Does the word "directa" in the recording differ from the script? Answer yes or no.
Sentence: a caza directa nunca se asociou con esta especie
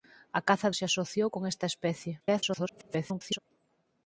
yes